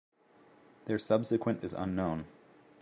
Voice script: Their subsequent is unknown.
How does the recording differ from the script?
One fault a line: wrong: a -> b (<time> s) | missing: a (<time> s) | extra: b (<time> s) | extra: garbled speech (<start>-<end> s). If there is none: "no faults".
no faults